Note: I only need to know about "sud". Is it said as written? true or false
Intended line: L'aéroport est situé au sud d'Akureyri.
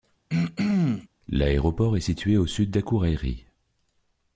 true